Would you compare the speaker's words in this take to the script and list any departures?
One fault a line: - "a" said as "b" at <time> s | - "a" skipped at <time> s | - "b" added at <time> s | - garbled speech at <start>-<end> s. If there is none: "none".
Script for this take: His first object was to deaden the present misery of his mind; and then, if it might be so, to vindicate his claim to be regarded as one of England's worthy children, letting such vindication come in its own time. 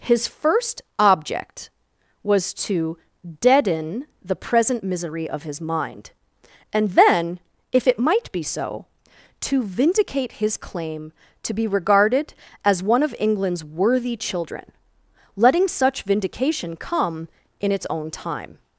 none